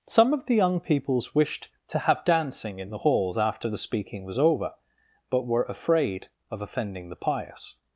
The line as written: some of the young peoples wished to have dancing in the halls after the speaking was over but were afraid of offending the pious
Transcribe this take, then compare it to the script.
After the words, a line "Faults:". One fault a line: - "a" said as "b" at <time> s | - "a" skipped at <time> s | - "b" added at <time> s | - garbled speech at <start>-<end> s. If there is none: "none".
some of the young peoples wished to have dancing in the halls after the speaking was over but were afraid of offending the pious
Faults:
none